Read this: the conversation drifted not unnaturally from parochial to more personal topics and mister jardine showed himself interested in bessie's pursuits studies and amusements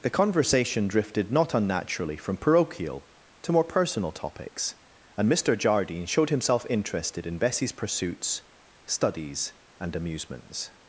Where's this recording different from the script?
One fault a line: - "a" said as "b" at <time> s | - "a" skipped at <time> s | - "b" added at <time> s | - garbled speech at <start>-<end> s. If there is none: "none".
none